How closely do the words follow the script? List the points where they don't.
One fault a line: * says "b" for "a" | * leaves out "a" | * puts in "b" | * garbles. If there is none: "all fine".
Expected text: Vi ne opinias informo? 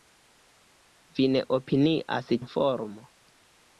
all fine